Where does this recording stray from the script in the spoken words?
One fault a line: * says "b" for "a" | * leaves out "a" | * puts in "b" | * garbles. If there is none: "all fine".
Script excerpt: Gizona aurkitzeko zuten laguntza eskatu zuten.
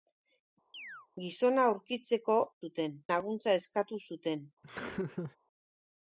all fine